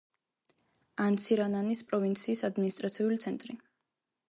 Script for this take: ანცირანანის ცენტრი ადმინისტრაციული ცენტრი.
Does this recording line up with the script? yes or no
no